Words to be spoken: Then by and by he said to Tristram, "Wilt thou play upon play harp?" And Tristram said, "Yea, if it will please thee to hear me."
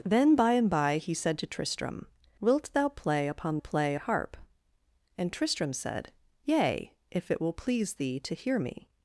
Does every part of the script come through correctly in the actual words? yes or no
yes